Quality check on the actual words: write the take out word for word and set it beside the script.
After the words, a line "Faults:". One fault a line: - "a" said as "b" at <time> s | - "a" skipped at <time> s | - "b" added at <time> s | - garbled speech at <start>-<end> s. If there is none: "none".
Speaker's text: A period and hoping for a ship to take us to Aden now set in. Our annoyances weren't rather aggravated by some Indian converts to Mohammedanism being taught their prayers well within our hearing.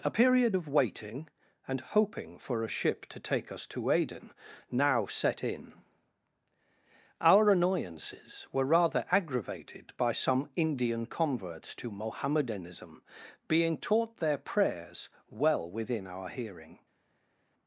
A period of waiting and hoping for a ship to take us to Aden now set in. Our annoyances were rather aggravated by some Indian converts to Mohammedanism being taught their prayers well within our hearing.
Faults:
- "of waiting" added at 0.5 s
- "weren't" said as "were" at 8.5 s